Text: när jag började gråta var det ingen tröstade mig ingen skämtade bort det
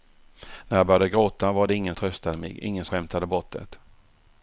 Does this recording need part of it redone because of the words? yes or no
no